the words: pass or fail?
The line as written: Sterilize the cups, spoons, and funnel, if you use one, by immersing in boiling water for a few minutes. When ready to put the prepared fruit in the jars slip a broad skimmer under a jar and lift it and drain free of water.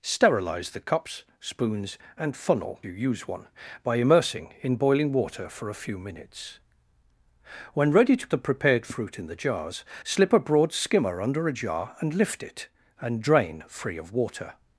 fail